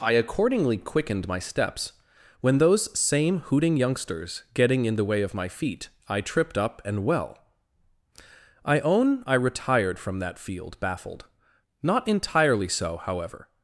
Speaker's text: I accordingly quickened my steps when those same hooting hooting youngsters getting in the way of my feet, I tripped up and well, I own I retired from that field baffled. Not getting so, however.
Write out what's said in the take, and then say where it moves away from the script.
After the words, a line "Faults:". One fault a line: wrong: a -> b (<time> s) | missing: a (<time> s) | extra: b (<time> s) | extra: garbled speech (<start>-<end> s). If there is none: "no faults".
I accordingly quickened my steps when those same hooting youngsters getting in the way of my feet, I tripped up and well, I own I retired from that field baffled. Not entirely so, however.
Faults:
missing: hooting (3.7 s)
wrong: getting -> entirely (12.1 s)